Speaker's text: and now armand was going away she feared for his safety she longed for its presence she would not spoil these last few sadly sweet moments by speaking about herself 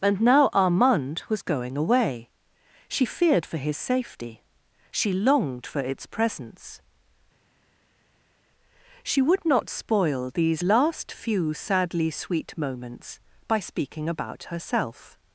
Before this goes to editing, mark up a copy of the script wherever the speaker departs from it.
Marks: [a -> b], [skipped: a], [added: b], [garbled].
and now armand was going away she feared for his safety she longed for its presence she would not spoil these last few sadly sweet moments by speaking about herself